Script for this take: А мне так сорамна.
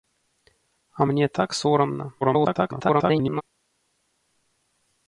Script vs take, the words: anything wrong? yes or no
yes